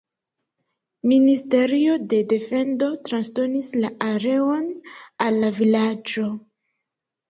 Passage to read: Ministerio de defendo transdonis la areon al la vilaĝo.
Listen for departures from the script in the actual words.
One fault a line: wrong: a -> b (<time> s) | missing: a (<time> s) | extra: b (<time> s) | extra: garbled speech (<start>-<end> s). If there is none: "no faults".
no faults